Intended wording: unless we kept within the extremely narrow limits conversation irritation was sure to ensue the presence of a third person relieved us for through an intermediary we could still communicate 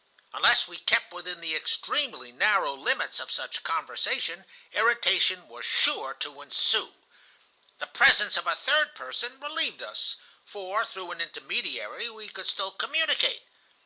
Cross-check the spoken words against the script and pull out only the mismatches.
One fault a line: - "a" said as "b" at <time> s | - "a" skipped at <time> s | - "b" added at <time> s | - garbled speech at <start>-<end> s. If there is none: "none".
- "of such" added at 3.2 s